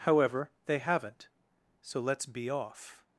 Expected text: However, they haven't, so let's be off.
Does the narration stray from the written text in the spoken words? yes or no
no